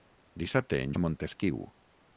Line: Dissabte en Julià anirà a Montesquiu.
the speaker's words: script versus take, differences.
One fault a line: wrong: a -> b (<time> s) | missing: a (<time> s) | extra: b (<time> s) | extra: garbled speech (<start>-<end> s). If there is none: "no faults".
missing: Julià anirà (0.9 s)